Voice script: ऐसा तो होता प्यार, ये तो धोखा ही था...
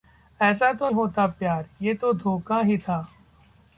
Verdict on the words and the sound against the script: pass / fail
pass